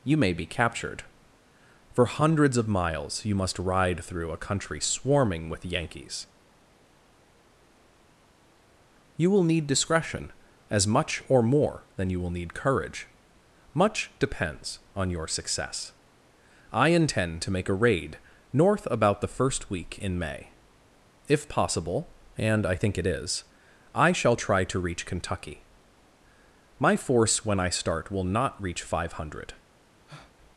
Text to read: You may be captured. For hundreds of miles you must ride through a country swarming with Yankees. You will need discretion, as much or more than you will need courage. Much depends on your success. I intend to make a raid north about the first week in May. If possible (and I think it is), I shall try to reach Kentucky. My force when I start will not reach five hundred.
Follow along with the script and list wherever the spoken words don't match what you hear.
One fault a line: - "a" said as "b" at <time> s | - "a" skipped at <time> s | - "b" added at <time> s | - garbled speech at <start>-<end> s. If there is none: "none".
none